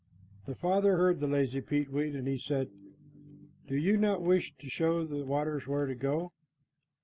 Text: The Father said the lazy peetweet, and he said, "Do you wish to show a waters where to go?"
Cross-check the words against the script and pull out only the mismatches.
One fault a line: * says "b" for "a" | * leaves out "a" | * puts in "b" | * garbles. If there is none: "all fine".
* says "heard" for "said"
* puts in "not"
* says "the" for "a"